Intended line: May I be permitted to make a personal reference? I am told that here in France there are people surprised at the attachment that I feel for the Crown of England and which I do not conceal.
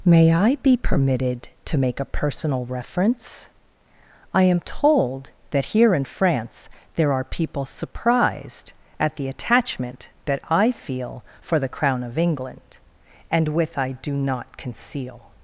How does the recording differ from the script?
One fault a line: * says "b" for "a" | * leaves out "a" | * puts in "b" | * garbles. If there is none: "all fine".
* says "with" for "which"